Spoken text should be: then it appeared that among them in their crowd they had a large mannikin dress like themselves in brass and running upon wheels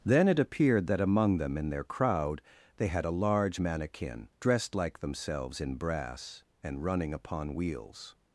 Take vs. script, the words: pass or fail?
fail